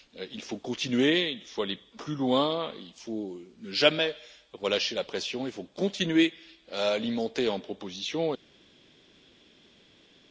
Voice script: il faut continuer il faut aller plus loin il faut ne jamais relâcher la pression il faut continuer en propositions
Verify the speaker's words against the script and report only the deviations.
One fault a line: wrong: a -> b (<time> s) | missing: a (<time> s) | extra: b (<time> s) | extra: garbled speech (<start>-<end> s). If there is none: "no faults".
extra: à alimenter (6.7 s)